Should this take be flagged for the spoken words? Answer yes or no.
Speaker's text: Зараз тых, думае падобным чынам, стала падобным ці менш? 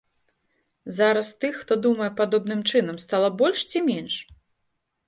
yes